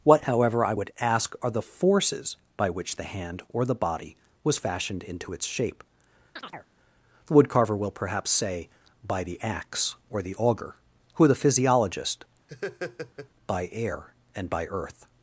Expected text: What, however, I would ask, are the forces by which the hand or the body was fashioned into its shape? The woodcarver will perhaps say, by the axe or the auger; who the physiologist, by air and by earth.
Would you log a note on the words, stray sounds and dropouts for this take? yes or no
yes